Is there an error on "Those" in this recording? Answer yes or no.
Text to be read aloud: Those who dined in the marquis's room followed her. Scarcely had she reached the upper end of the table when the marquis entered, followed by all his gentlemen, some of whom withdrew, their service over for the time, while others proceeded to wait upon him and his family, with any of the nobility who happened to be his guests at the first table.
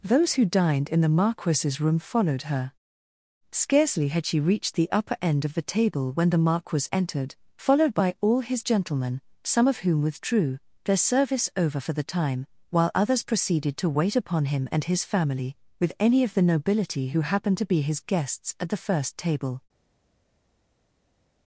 no